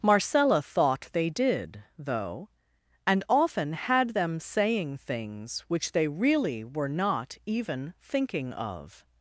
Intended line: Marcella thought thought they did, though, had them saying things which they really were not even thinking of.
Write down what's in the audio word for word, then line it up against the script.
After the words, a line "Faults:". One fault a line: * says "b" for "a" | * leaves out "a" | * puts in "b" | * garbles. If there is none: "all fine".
Marcella thought they did, though, and often had them saying things which they really were not even thinking of.
Faults:
* leaves out "thought"
* puts in "and often"